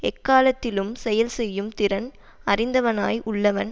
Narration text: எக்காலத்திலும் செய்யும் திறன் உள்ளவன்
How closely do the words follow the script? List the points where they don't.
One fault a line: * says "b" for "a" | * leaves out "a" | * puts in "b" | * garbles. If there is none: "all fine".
* puts in "செயல்"
* puts in "அறிந்தவனாய்"